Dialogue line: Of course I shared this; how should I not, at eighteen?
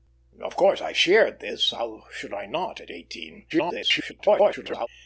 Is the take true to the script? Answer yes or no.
no